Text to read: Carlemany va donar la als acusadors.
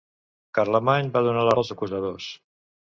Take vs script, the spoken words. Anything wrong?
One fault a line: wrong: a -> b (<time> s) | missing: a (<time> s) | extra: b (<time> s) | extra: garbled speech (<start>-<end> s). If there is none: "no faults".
no faults